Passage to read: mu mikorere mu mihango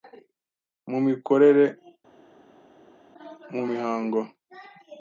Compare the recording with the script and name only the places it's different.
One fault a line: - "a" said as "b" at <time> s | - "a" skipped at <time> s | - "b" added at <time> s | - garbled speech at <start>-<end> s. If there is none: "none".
none